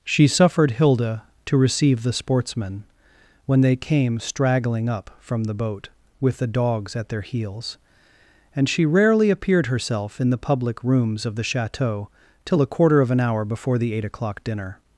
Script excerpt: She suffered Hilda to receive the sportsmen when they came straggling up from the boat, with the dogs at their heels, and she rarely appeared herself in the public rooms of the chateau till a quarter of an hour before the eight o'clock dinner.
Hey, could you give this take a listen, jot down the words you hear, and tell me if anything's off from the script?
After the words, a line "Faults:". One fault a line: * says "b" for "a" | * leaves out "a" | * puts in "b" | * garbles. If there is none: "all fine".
She suffered Hilda to receive the sportsmen when they came straggling up from the boat, with the dogs at their heels, and she rarely appeared herself in the public rooms of the chateau till a quarter of an hour before the eight o'clock dinner.
Faults:
all fine